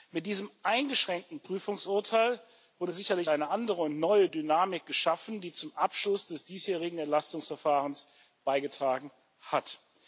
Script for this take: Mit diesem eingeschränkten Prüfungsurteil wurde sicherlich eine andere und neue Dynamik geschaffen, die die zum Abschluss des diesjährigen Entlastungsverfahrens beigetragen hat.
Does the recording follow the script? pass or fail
fail